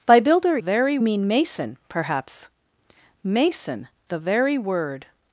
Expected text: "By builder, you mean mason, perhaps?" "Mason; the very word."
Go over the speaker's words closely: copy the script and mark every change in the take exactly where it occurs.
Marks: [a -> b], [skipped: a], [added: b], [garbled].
"By builder, [you -> very] mean mason, perhaps?" "Mason; the very word."